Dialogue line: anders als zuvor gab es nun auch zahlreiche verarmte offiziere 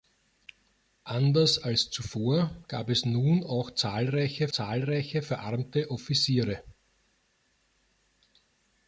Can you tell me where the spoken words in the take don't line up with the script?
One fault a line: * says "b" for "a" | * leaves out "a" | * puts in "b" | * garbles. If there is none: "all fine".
* puts in "zahlreiche"